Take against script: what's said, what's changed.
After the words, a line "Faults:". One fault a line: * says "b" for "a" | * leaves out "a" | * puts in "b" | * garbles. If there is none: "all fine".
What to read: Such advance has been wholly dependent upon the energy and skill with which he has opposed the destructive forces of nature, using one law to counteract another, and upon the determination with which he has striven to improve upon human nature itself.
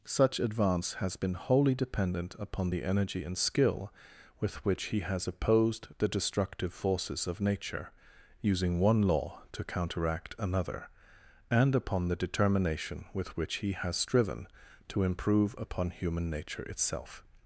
Such advance has been wholly dependent upon the energy and skill with which he has opposed the destructive forces of nature, using one law to counteract another, and upon the determination with which he has striven to improve upon human nature itself.
Faults:
all fine